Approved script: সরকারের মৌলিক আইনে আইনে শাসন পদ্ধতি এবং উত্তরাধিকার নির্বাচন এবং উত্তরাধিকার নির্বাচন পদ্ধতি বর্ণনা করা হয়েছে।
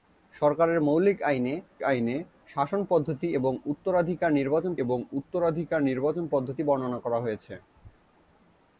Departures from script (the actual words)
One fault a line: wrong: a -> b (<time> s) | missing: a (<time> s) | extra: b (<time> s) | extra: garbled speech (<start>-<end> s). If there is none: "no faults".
no faults